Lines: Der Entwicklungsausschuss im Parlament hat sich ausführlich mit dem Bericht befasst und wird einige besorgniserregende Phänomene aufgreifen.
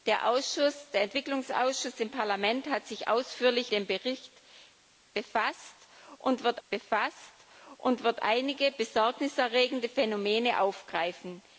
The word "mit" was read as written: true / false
false